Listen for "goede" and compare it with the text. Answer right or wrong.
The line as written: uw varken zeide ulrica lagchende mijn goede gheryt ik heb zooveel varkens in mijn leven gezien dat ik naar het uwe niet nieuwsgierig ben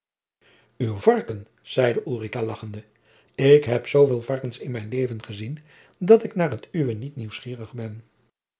wrong